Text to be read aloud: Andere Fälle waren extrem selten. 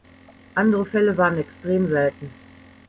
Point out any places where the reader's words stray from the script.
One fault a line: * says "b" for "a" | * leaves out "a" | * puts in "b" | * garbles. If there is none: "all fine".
all fine